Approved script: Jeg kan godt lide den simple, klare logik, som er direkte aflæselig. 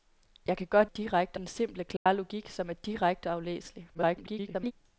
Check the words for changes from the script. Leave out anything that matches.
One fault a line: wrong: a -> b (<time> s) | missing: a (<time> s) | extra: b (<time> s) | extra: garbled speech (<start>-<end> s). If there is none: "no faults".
wrong: lide -> direkte (0.8 s)
extra: garbled speech (3.9-4.7 s)